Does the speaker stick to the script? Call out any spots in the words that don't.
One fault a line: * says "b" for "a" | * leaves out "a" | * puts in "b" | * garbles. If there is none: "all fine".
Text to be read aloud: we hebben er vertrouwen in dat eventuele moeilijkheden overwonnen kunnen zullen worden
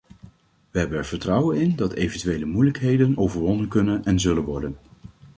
* puts in "en"